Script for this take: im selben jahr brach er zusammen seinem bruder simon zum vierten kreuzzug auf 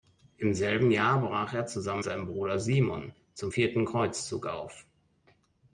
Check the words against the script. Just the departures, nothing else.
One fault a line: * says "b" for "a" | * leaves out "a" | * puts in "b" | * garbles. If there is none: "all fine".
all fine